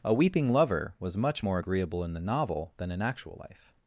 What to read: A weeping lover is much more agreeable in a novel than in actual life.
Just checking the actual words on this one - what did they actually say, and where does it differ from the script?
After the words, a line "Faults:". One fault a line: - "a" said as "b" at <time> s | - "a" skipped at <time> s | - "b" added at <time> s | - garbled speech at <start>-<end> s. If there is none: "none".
A weeping lover was much more agreeable in the novel than in actual life.
Faults:
- "is" said as "was" at 1.0 s
- "a" said as "the" at 2.1 s